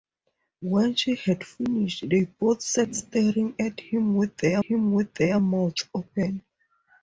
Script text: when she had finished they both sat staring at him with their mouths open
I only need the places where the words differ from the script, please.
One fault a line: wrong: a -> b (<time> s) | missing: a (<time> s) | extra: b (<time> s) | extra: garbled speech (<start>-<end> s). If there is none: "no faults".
extra: him with their (4.6 s)